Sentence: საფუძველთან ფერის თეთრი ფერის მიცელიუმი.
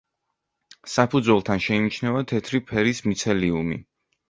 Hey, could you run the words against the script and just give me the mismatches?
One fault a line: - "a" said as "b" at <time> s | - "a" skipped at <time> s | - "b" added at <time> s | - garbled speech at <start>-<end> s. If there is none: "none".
- "ფერის" said as "შეიმჩნევა" at 1.7 s